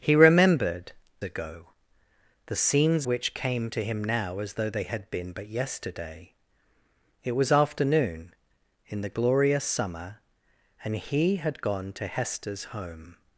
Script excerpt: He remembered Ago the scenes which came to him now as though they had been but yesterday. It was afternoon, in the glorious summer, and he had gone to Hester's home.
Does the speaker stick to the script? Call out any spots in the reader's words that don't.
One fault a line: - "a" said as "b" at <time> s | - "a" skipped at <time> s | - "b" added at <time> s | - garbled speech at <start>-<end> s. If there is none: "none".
none